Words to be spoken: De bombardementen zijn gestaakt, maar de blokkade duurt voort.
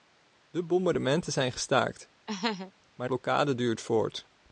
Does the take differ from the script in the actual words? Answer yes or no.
yes